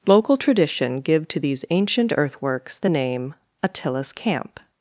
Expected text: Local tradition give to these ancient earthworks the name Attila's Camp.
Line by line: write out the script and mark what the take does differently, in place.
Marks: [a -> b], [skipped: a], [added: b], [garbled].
Local tradition give to these ancient earthworks the name Attila's Camp.